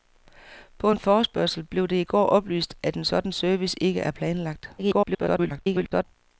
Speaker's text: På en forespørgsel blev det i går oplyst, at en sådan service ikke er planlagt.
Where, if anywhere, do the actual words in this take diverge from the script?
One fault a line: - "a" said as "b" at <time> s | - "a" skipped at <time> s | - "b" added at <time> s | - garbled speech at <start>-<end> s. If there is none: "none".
- garbled speech at 4.8-6.0 s